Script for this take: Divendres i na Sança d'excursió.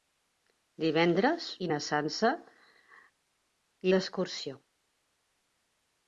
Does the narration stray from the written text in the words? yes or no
no